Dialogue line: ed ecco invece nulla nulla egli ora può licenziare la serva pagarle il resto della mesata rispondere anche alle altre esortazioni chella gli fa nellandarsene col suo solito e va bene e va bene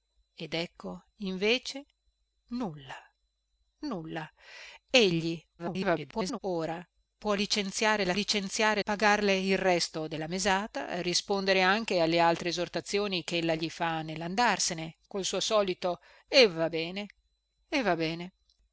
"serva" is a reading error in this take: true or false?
true